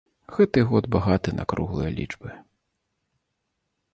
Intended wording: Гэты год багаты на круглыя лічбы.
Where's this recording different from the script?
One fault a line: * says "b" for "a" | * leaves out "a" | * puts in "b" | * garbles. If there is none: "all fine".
all fine